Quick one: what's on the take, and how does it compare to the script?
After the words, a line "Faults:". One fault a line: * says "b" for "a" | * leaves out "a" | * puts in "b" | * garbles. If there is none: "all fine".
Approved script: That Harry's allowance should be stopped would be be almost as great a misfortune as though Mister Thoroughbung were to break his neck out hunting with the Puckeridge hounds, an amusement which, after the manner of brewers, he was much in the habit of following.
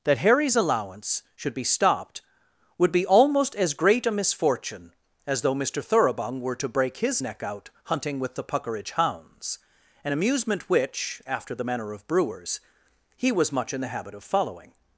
That Harry's allowance should be stopped would be almost as great a misfortune as though Mister Thoroughbung were to break his neck out hunting with the Puckeridge hounds, an amusement which, after the manner of brewers, he was much in the habit of following.
Faults:
* leaves out "be"